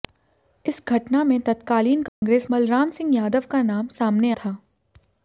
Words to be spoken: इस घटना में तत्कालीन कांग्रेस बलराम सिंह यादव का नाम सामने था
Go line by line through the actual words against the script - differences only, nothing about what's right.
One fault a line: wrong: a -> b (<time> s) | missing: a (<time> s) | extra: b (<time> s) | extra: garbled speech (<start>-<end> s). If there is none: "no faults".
no faults